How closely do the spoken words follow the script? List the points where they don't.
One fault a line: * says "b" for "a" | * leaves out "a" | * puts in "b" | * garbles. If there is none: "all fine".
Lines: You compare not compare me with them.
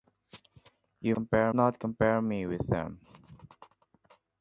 all fine